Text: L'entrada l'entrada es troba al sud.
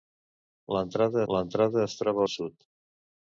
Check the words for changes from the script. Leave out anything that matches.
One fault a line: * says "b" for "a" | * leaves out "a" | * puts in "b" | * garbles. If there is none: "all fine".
all fine